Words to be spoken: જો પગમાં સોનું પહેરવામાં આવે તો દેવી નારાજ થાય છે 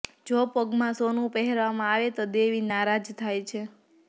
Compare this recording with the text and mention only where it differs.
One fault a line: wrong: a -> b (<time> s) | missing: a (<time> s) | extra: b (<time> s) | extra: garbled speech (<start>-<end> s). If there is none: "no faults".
no faults